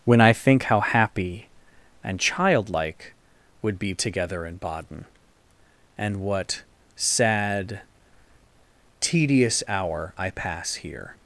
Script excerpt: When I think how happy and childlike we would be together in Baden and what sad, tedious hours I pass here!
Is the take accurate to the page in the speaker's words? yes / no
no